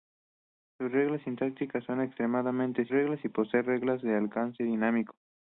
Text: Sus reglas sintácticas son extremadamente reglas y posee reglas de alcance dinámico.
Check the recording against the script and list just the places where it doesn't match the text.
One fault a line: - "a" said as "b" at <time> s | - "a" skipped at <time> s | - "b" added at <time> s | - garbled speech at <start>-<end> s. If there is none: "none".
none